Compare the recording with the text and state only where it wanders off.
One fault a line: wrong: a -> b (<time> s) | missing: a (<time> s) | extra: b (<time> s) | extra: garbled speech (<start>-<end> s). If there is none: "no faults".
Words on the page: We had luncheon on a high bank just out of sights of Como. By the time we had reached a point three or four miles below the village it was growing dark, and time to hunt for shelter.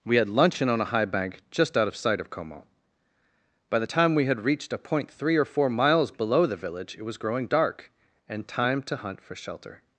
wrong: sights -> sight (1.9 s)